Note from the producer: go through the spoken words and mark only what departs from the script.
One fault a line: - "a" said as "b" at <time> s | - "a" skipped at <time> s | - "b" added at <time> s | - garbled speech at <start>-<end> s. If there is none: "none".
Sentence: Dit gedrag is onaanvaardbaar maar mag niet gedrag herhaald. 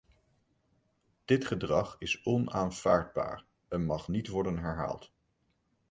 - "maar" said as "en" at 3.7 s
- "gedrag" said as "worden" at 4.3 s